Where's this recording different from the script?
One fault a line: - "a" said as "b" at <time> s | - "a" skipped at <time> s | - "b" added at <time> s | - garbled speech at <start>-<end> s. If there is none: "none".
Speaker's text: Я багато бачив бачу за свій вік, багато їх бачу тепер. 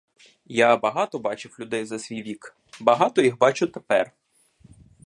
- "бачу" said as "людей" at 1.6 s